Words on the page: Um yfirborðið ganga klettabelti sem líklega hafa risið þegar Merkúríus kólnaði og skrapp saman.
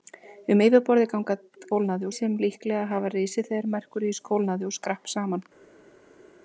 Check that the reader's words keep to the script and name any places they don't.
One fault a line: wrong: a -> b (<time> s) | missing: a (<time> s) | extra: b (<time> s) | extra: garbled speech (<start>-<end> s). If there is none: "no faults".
wrong: klettabelti -> kólnaði (1.7 s)